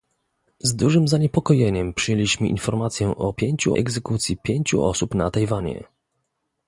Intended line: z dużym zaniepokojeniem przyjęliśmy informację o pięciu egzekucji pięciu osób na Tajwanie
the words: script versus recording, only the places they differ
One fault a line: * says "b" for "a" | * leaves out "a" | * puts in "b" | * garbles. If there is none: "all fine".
all fine